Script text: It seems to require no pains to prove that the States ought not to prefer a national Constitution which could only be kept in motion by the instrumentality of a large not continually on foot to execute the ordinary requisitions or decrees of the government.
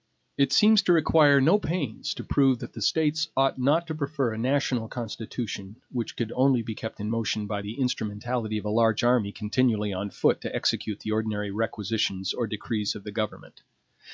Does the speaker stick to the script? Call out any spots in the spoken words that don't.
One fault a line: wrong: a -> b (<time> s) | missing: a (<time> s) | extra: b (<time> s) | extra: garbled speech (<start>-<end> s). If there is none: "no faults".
wrong: not -> army (9.0 s)